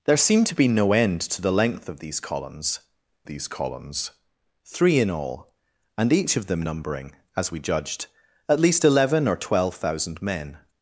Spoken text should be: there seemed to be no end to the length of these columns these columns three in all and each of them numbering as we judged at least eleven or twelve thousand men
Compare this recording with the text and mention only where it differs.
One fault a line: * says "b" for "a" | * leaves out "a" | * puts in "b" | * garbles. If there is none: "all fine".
all fine